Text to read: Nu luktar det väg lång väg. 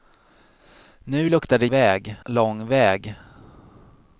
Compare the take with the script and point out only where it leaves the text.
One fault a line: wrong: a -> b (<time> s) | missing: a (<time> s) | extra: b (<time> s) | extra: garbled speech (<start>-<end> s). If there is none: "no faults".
no faults